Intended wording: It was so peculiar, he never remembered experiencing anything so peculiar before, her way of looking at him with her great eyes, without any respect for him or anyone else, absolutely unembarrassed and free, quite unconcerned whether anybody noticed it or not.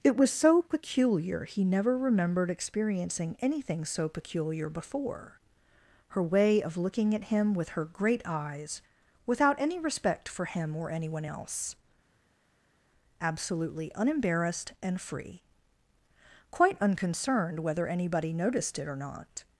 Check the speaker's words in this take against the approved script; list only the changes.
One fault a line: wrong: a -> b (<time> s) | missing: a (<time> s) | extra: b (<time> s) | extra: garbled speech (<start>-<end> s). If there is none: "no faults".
no faults